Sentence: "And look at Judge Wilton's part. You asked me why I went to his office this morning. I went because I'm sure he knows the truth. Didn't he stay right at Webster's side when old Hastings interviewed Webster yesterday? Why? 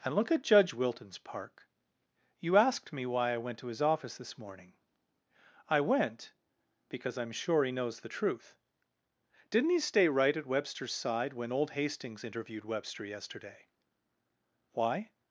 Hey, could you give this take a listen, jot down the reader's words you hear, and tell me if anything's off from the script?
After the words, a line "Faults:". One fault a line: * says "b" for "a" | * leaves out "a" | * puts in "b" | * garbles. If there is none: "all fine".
"And look at Judge Wilton's park. You asked me why I went to his office this morning. I went because I'm sure he knows the truth. Didn't he stay right at Webster's side when old Hastings interviewed Webster yesterday? Why?
Faults:
* says "park" for "part"